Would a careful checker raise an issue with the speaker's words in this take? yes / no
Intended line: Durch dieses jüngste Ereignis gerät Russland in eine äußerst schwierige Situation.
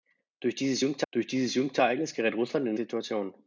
yes